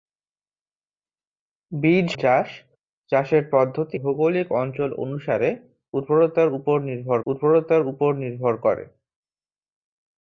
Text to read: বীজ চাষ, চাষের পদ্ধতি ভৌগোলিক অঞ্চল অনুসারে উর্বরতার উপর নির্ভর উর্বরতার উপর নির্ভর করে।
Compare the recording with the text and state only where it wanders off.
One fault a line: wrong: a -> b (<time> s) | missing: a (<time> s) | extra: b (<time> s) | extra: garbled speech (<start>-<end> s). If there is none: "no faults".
no faults